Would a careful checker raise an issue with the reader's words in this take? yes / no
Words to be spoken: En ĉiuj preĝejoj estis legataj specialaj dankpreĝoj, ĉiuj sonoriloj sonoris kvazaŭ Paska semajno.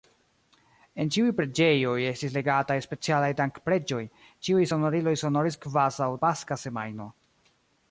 no